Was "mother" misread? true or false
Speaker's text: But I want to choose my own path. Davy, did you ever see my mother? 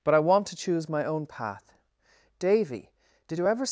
true